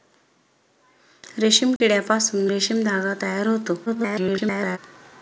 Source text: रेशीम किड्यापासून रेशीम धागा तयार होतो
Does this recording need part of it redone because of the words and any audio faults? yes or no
yes